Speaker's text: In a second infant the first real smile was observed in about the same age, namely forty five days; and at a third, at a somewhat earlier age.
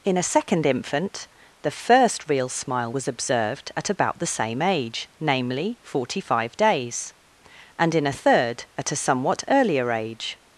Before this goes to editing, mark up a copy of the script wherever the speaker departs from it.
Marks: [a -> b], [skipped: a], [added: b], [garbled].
In a second infant the first real smile was observed [in -> at] about the same age, namely forty five days; and [at -> in] a third, at a somewhat earlier age.